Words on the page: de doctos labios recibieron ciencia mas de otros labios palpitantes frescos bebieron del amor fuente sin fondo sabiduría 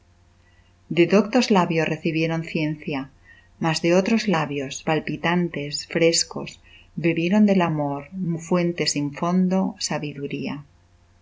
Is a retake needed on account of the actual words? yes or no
no